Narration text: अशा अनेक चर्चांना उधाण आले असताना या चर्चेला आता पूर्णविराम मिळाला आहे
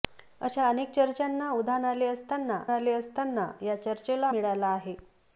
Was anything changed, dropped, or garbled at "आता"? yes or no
yes